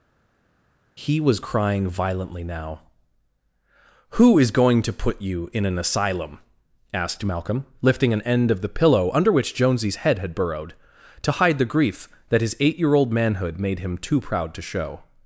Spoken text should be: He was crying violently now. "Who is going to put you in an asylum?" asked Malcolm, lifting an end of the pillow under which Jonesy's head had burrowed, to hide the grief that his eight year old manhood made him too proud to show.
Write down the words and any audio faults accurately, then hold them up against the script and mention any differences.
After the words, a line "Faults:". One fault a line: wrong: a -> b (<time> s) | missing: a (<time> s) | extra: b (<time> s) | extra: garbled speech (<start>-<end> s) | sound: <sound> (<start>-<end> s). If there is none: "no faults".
He was crying violently now. "Who is going to put you in an asylum?" asked Malcolm, lifting an end of the pillow under which Jonesy's head had burrowed, to hide the grief that his eight year old manhood made him too proud to show.
Faults:
no faults